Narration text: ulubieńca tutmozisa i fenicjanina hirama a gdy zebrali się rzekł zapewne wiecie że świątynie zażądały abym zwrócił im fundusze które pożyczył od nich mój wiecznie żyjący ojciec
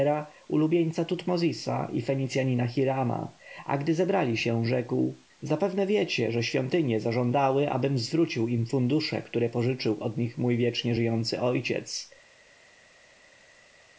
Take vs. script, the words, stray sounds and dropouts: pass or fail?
pass